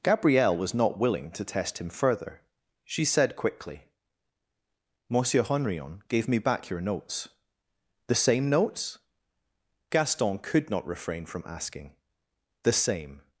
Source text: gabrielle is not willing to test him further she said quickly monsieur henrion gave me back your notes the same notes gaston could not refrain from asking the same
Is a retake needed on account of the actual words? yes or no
yes